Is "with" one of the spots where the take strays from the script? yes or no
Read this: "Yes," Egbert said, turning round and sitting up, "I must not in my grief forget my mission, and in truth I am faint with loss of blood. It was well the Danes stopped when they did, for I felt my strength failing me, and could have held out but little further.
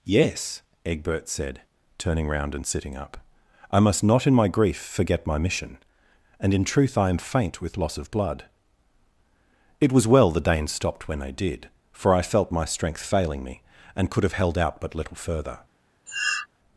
no